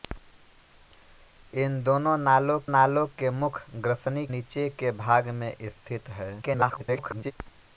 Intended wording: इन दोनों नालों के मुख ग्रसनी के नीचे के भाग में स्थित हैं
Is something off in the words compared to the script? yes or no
yes